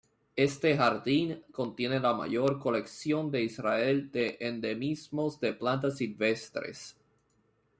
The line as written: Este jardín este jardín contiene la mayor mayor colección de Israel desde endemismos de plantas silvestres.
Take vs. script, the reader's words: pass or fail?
fail